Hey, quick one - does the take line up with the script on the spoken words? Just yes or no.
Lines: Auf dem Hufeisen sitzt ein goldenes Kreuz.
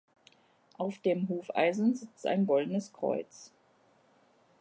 yes